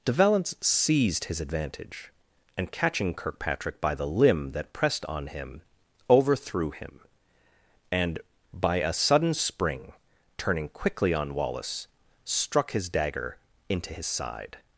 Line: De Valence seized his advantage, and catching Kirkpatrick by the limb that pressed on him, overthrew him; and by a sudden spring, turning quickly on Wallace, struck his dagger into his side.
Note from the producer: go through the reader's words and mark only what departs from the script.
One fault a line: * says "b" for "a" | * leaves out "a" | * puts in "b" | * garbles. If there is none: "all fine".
all fine